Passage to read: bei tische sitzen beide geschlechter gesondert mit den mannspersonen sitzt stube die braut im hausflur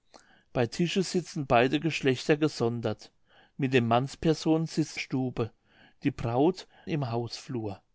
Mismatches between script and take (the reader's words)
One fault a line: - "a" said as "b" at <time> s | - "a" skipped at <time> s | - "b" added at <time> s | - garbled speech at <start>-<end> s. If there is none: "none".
none